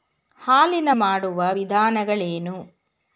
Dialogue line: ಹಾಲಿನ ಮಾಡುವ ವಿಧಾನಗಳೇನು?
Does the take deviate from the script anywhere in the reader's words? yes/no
no